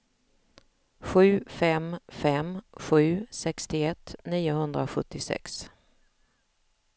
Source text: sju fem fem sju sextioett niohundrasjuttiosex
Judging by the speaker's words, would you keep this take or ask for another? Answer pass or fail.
pass